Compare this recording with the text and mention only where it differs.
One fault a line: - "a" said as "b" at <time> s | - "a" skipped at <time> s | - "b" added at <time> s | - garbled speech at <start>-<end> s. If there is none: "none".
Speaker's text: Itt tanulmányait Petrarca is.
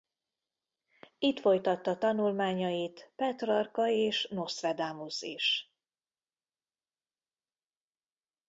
- "folytatta" added at 1.4 s
- "és Nostradamus" added at 3.9 s